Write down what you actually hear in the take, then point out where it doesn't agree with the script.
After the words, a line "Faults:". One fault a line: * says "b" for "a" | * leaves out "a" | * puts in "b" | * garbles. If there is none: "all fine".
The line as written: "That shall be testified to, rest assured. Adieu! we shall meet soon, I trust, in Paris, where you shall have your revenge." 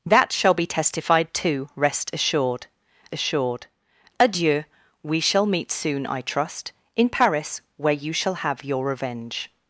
"That shall be testified to, rest assured assured. Adieu! we shall meet soon, I trust, in Paris, where you shall have your revenge."
Faults:
* puts in "assured"